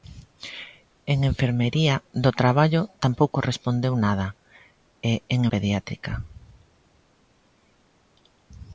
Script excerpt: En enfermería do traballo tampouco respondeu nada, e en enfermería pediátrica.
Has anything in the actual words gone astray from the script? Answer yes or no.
yes